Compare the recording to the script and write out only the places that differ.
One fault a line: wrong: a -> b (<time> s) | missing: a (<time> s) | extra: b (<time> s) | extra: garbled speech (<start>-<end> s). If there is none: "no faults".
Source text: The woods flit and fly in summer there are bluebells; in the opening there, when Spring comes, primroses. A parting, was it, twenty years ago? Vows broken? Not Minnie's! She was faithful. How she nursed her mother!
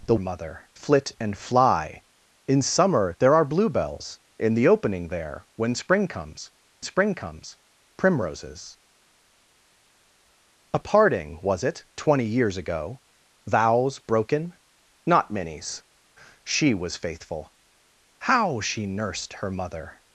wrong: woods -> mother (0.2 s)
extra: Spring comes (6.8 s)